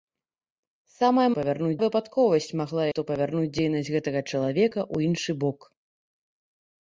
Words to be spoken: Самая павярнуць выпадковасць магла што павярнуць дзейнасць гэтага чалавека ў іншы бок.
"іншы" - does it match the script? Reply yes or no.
yes